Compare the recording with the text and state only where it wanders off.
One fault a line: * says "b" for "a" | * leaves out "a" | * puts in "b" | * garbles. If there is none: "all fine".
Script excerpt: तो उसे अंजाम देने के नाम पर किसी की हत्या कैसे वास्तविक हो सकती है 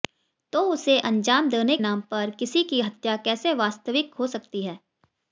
* leaves out "के"